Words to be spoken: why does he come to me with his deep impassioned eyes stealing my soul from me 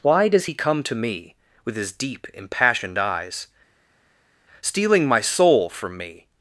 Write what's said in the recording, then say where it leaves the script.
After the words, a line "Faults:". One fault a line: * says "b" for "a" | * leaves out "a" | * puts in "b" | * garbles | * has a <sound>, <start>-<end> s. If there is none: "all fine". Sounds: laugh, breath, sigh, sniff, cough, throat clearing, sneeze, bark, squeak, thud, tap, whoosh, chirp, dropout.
why does he come to me with his deep impassioned eyes stealing my soul from me
Faults:
all fine